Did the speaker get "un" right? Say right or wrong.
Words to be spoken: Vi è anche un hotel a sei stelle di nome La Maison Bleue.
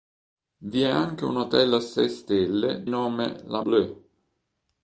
right